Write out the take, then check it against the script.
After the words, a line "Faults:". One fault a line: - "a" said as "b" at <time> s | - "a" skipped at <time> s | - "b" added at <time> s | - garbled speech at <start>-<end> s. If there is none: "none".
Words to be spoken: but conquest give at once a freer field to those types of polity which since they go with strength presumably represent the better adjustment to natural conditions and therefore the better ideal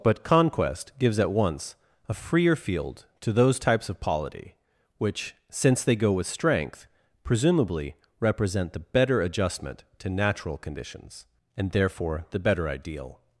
but conquest gives at once a freer field to those types of polity which since they go with strength presumably represent the better adjustment to natural conditions and therefore the better ideal
Faults:
- "give" said as "gives" at 1.0 s